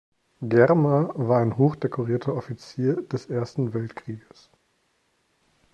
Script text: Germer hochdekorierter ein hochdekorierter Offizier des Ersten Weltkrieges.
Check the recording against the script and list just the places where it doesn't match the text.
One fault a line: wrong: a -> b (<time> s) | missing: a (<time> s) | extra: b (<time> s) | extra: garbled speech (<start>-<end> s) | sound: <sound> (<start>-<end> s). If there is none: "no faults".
wrong: hochdekorierter -> war (1.1 s)